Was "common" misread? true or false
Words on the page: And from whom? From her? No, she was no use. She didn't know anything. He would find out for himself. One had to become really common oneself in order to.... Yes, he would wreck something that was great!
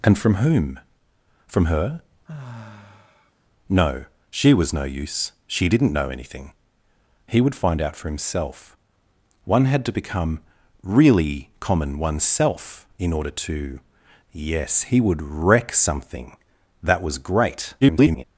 false